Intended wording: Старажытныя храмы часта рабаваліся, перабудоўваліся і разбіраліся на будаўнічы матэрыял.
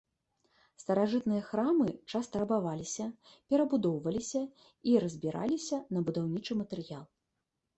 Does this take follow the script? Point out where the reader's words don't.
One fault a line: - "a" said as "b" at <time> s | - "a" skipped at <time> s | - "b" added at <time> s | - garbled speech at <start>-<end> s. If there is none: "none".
none